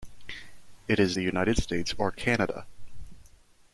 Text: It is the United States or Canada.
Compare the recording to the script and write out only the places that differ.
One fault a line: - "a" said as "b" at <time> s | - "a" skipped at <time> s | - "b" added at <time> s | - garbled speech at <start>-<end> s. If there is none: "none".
none